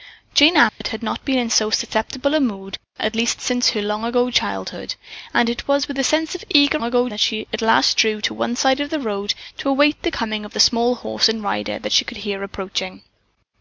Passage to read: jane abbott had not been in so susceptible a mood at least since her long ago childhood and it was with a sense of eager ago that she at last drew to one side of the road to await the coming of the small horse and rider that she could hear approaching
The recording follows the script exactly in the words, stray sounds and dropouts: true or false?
false